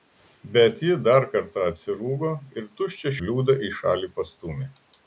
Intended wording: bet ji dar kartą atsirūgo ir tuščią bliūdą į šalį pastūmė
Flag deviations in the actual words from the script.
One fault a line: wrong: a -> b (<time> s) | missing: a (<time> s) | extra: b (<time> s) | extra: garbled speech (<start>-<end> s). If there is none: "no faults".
no faults